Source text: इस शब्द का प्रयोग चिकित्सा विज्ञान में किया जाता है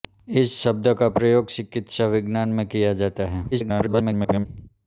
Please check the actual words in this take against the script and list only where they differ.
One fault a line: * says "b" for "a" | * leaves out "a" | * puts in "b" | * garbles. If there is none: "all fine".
* garbles